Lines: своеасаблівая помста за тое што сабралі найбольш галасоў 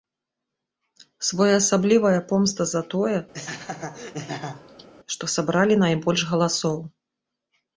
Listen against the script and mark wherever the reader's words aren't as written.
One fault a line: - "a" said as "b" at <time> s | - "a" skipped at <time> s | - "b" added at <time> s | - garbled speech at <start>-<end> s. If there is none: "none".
none